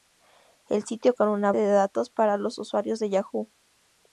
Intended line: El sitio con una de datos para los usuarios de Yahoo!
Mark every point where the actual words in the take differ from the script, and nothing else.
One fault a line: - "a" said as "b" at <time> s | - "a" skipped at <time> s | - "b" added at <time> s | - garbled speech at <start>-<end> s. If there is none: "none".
none